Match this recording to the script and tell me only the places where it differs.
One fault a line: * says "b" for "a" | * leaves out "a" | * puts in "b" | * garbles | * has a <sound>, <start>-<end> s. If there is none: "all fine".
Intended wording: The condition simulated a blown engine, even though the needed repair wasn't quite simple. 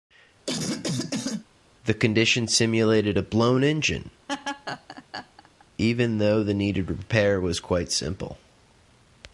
* has a cough, 0.5-1.5 s
* has a laugh, 4.3-5.7 s
* says "was" for "wasn't"